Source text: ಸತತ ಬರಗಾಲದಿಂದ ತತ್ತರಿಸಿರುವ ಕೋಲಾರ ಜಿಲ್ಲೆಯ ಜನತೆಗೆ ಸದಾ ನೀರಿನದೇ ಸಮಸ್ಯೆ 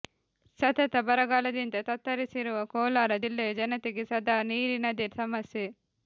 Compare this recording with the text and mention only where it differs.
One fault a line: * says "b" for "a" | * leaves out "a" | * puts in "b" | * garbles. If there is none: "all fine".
all fine